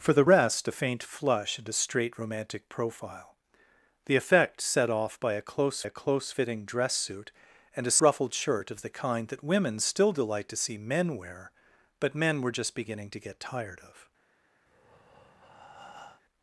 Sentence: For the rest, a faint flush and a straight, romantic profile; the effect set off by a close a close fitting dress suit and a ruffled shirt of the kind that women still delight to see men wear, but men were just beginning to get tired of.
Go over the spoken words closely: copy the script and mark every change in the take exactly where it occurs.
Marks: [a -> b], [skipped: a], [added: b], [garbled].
For the rest, a faint flush and a straight, romantic profile; the effect set off by a close a close fitting dress suit and a ruffled shirt of the kind that women still delight to see men wear, but men were just beginning to get tired of.